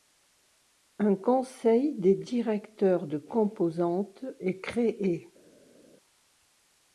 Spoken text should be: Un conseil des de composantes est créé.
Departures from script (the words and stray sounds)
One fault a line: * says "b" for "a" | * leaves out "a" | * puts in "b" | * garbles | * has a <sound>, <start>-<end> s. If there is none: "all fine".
* puts in "directeurs"